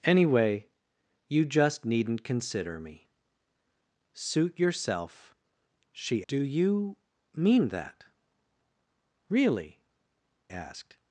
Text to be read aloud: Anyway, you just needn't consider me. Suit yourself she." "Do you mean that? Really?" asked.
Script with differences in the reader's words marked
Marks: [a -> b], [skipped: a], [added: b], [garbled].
Anyway, you just needn't consider me. Suit yourself she." "Do you mean that? Really?" asked.